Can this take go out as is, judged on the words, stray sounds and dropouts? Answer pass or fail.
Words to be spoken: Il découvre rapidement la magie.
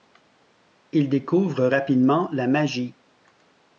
pass